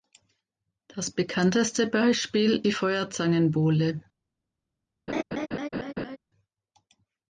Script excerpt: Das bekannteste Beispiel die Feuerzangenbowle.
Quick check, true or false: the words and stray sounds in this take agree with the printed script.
false